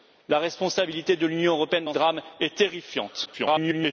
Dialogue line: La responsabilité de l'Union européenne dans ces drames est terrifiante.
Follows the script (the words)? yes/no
no